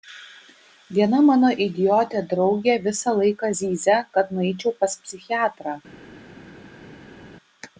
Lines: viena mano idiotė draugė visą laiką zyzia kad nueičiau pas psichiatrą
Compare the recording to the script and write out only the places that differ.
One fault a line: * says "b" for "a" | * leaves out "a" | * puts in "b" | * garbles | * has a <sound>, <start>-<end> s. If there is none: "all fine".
all fine